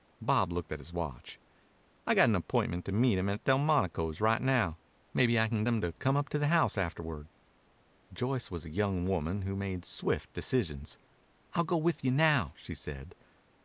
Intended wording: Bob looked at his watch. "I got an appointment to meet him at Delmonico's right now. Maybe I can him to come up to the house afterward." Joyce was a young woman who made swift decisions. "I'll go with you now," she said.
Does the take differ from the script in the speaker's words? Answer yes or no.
no